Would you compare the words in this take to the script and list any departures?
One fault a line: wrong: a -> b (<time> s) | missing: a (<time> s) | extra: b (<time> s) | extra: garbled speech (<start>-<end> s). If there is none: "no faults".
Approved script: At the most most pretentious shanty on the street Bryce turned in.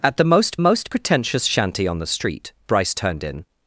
no faults